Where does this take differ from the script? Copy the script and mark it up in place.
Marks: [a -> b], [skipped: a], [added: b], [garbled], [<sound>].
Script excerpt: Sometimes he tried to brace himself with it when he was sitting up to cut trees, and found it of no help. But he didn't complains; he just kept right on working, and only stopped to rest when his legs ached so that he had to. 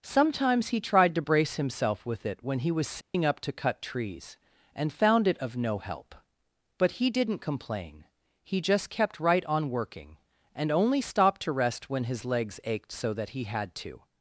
Sometimes he tried to brace himself with it when he was sitting [dropout] up to cut trees, and found it of no help. But he didn't [complains; -> complain] he just kept right on working, and only stopped to rest when his legs ached so that he had to.